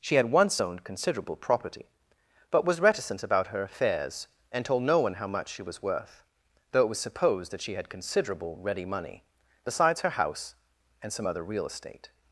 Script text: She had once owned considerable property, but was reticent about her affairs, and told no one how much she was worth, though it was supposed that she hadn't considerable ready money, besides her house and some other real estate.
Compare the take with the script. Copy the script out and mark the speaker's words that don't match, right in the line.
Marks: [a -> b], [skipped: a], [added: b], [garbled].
She had once owned considerable property, but was reticent about her affairs, and told no one how much she was worth, though it was supposed that she [hadn't -> had] considerable ready money, besides her house and some other real estate.